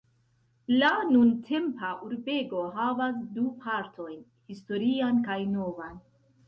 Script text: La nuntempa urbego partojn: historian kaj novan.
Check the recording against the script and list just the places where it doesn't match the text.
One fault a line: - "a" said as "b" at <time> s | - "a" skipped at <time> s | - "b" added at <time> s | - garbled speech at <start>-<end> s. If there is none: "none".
- "havas du" added at 2.8 s